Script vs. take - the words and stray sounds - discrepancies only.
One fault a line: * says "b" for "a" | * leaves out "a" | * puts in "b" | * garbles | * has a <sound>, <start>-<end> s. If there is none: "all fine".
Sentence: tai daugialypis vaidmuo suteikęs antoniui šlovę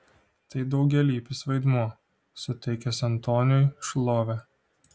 all fine